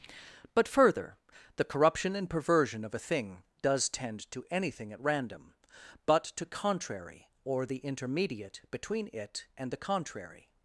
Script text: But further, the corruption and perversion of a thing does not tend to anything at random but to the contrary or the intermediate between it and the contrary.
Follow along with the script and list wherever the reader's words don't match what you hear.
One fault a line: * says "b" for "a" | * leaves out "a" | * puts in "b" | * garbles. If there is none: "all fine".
* leaves out "not"
* leaves out "the"